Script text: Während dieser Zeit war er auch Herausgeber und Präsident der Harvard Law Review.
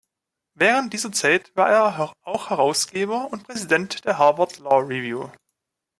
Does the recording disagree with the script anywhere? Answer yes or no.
no